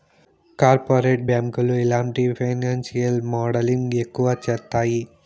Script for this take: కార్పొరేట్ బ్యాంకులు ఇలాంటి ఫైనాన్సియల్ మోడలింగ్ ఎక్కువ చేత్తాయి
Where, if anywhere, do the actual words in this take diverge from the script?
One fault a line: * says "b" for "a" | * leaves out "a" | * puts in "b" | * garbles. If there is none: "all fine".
all fine